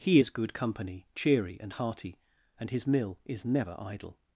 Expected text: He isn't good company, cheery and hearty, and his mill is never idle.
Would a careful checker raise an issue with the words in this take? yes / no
yes